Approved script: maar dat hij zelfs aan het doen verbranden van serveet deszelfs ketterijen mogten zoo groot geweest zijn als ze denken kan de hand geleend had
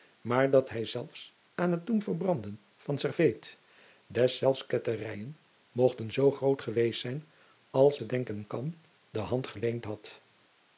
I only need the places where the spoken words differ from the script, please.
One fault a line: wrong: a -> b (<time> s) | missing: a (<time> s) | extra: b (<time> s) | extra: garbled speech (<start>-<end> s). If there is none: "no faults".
no faults